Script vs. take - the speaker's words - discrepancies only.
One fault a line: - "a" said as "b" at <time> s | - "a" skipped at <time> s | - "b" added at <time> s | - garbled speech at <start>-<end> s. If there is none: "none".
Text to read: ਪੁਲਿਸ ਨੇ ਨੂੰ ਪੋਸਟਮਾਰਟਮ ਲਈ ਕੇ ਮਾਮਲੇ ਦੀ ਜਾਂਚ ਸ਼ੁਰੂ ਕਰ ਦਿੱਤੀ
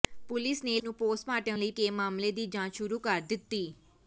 none